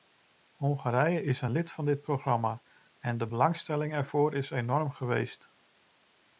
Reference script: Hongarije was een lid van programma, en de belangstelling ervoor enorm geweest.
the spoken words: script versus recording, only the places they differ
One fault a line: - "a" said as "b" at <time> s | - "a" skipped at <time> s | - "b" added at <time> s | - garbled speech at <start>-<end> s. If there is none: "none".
- "was" said as "is" at 1.2 s
- "dit" added at 1.9 s
- "is" added at 4.3 s